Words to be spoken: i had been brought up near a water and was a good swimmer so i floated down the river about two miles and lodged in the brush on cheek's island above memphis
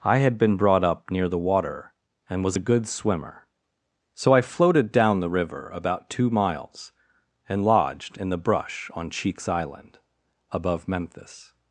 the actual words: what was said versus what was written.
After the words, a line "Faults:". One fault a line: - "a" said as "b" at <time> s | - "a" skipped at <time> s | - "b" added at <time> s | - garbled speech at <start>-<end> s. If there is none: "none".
i had been brought up near the water and was a good swimmer so i floated down the river about two miles and lodged in the brush on cheek's island above memphis
Faults:
- "a" said as "the" at 1.3 s